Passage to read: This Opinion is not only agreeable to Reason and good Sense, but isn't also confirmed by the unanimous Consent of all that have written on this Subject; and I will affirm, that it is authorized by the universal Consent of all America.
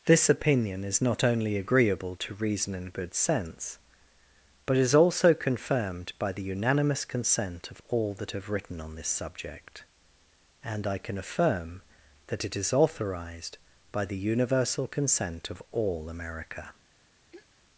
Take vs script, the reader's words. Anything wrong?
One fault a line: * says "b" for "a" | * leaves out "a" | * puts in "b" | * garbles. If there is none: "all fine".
* says "is" for "isn't"
* says "can" for "will"